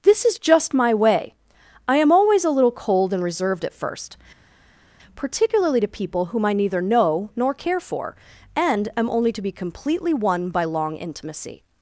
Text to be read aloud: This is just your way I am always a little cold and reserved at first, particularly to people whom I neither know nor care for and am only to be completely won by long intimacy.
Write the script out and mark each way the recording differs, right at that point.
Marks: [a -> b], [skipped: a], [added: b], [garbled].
This is just [your -> my] way I am always a little cold and reserved at first, particularly to people whom I neither know nor care for and am only to be completely won by long intimacy.